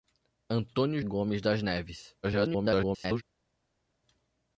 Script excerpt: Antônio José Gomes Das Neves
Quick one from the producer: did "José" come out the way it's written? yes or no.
no